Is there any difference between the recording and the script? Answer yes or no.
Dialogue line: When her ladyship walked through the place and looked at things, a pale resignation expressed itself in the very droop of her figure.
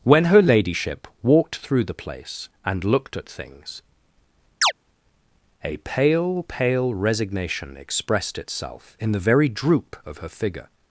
yes